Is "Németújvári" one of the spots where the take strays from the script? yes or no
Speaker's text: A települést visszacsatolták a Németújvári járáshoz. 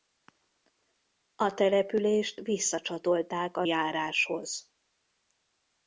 yes